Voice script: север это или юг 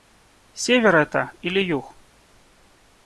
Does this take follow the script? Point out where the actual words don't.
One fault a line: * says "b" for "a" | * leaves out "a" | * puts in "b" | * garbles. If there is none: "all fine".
all fine